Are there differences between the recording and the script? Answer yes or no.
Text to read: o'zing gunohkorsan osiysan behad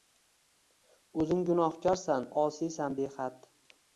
no